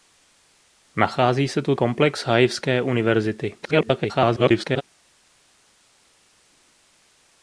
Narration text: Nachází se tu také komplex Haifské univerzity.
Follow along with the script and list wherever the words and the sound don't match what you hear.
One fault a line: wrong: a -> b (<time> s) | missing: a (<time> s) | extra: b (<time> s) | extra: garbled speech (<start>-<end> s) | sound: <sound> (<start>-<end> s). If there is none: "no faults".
missing: také (1.8 s)
extra: garbled speech (3.6-4.8 s)